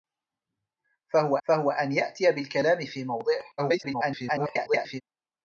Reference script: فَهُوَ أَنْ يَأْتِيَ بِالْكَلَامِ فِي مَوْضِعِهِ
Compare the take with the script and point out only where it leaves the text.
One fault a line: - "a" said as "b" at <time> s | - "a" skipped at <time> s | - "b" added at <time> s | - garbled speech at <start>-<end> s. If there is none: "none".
- "فَهُوَ" added at 1.5 s
- garbled speech at 3.6-5.0 s